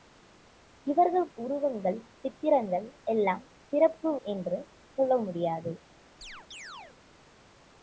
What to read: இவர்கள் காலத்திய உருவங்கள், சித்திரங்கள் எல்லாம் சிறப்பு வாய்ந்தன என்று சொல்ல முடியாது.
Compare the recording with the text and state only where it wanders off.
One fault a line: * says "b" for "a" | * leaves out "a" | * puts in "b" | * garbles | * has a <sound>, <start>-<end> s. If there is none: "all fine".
* leaves out "காலத்திய"
* leaves out "வாய்ந்தன"
* has a chirp, 6.2-7.0 s